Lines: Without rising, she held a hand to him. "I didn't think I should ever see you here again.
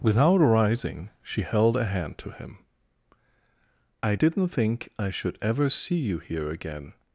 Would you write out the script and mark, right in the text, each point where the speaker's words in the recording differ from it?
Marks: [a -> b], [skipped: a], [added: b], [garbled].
Without rising, she held a hand to him. "I didn't think I should ever see you here again.